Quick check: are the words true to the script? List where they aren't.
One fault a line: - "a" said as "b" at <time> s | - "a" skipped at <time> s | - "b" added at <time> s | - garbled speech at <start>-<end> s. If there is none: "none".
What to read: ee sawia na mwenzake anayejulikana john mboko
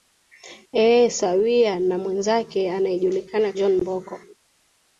none